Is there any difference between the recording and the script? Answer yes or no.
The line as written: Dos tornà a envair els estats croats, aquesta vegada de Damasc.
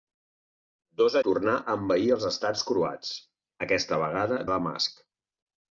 no